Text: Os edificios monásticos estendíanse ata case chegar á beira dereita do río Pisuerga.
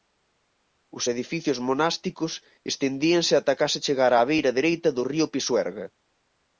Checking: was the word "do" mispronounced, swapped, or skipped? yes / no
no